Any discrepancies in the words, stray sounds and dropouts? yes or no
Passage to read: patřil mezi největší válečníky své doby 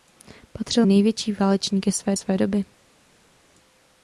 yes